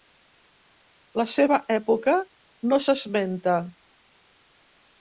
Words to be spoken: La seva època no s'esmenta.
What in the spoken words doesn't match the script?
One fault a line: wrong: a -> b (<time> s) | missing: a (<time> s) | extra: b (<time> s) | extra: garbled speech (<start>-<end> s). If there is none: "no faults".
no faults